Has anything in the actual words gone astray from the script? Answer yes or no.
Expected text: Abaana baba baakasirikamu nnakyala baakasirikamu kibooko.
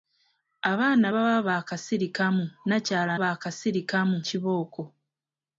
no